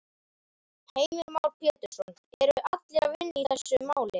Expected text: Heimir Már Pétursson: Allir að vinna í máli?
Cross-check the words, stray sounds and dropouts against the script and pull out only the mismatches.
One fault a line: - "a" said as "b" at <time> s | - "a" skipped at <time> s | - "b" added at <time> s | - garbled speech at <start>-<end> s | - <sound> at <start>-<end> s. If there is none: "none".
- "Eru" added at 2.4 s
- "þessu" added at 3.5 s